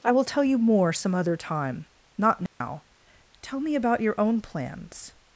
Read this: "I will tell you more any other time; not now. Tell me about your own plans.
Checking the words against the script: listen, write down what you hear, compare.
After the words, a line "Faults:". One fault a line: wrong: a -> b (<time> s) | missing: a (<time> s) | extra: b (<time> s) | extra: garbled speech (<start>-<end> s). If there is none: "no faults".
"I will tell you more some other time; not now. Tell me about your own plans.
Faults:
wrong: any -> some (0.9 s)